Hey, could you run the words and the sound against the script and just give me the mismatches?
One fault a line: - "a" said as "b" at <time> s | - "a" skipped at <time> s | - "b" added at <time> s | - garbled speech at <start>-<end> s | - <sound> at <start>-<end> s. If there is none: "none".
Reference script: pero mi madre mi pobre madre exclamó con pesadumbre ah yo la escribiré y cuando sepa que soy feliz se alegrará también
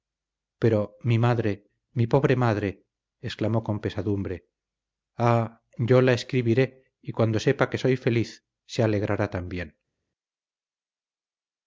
none